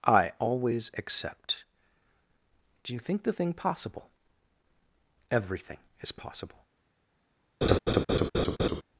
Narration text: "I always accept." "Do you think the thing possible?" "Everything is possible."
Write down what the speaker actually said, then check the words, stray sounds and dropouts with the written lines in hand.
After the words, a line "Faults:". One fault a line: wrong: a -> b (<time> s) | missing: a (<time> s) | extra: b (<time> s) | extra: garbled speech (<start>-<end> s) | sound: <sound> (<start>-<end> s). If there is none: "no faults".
"I always accept." "Do you think the thing possible?" "Everything is possible."
Faults:
sound: laugh (7.6-8.8 s)